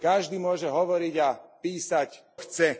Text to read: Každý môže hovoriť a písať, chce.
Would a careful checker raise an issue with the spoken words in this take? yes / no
no